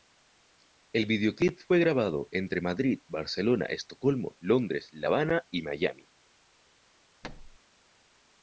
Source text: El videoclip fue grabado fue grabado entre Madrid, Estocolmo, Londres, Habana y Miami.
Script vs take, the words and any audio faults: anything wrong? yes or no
yes